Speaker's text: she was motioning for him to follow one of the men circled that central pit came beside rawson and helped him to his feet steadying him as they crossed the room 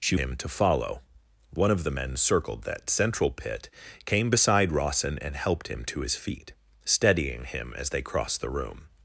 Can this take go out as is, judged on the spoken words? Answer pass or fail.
fail